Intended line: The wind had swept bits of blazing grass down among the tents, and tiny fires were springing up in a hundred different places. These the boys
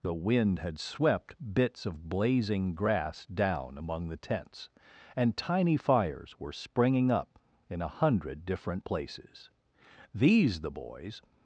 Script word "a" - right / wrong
right